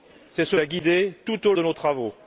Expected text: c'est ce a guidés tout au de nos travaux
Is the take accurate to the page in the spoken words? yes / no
yes